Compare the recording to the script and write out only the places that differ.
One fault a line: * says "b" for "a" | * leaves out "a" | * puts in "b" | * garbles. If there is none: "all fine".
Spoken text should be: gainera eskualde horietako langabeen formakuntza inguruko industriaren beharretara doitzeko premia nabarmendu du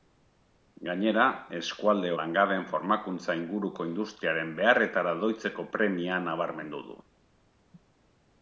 * leaves out "horietako"